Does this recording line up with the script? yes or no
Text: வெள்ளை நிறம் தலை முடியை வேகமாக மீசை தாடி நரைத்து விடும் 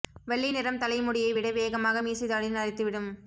no